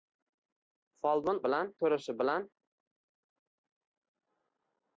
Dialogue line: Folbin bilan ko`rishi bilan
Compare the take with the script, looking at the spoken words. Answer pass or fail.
pass